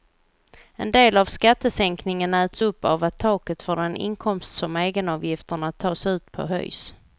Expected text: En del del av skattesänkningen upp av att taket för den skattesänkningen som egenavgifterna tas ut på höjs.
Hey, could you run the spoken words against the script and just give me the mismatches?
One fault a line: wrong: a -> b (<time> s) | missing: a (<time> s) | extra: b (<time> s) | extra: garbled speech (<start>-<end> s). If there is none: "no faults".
missing: del (1.2 s)
extra: äts (2.3 s)
wrong: skattesänkningen -> inkomst (4.0 s)